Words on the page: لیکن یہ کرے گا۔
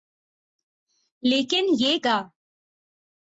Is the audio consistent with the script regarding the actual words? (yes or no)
no